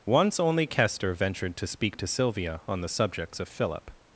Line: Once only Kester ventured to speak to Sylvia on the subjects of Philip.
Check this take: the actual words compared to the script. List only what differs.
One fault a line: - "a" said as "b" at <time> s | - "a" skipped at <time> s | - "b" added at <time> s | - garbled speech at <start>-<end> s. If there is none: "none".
none